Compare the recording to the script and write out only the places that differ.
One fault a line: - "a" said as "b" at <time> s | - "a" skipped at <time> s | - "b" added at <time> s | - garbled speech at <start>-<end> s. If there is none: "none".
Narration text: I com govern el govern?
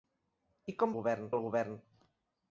none